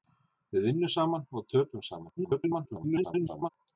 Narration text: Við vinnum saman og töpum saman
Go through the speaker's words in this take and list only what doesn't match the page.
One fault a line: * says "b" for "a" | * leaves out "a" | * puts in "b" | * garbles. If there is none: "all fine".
* garbles